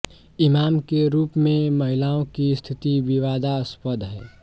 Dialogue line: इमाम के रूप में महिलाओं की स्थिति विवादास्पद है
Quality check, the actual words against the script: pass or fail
pass